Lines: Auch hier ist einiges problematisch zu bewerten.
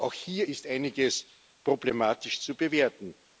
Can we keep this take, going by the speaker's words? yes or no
yes